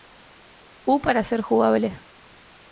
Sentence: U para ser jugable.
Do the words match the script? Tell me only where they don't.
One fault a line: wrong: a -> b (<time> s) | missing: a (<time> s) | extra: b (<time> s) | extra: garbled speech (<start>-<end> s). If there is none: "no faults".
no faults